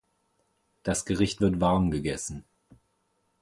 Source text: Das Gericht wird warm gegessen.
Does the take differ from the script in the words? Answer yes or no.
no